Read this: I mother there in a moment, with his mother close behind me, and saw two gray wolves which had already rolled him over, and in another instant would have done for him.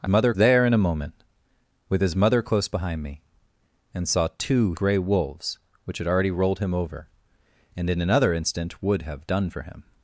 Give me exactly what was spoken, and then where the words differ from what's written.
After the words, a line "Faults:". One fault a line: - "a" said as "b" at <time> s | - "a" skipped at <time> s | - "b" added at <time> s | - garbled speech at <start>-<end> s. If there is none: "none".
I mother there in a moment, with his mother close behind me, and saw two gray wolves which had already rolled him over, and in another instant would have done for him.
Faults:
none